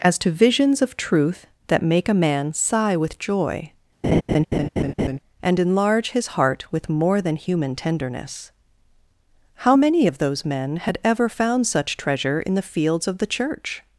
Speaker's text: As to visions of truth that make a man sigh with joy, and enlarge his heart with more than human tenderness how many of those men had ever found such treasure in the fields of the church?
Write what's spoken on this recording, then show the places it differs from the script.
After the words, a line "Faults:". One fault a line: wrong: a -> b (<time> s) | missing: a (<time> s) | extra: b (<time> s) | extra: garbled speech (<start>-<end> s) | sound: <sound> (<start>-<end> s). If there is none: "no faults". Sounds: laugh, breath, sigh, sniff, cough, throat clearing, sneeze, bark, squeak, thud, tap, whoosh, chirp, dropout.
As to visions of truth that make a man sigh with joy, and enlarge his heart with more than human tenderness how many of those men had ever found such treasure in the fields of the church?
Faults:
sound: laugh (4.0-5.2 s)